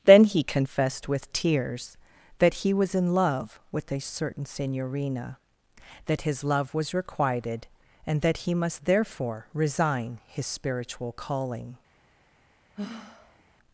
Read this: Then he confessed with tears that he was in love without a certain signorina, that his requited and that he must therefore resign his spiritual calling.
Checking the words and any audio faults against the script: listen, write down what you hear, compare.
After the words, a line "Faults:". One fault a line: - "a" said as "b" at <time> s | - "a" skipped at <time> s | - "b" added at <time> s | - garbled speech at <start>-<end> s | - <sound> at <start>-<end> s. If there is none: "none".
Then he confessed with tears that he was in love with a certain signorina, that his love was requited and that he must therefore resign his spiritual calling.
Faults:
- "without" said as "with" at 3.7 s
- "love was" added at 6.4 s
- sigh at 12.7-13.4 s